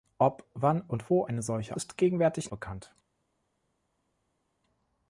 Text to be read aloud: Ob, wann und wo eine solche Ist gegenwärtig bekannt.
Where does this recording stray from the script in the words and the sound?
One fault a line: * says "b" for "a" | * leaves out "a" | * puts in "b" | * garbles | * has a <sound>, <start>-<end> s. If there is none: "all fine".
all fine